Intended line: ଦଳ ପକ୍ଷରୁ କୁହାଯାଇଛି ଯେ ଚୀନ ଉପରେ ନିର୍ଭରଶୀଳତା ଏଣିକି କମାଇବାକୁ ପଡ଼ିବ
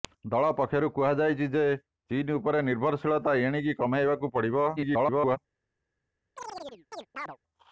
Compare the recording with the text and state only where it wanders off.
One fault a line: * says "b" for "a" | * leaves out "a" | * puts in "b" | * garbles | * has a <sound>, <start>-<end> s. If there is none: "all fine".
* garbles
* has a chirp, 6.4-7.4 s